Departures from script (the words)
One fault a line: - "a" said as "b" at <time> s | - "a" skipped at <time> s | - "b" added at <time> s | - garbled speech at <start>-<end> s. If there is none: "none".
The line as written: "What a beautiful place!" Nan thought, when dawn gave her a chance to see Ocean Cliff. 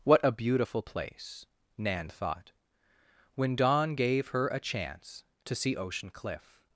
none